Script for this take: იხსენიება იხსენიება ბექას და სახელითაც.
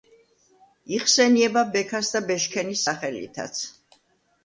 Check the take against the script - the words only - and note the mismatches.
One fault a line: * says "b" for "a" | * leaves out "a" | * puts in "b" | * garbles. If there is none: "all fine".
* leaves out "იხსენიება"
* puts in "ბეშქენის"